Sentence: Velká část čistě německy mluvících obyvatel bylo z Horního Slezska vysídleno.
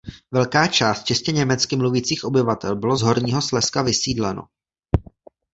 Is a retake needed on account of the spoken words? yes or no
no